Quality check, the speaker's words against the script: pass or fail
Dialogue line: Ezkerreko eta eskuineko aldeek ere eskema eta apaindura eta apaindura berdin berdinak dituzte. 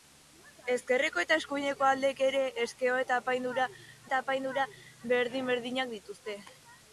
pass